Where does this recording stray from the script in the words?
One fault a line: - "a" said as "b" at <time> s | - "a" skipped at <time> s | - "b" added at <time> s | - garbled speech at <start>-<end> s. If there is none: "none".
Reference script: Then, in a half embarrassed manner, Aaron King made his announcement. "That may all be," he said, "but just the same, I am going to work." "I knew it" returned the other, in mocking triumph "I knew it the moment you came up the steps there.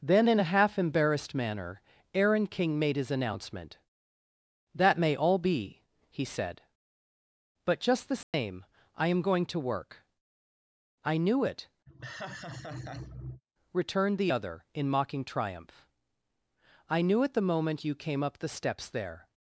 none